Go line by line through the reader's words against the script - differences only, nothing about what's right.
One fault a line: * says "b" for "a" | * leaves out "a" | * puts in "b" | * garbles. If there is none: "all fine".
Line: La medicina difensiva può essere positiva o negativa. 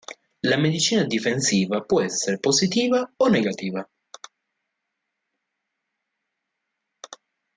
all fine